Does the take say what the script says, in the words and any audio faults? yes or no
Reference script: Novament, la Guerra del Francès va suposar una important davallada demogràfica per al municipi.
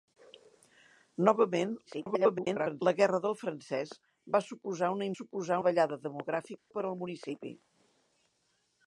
no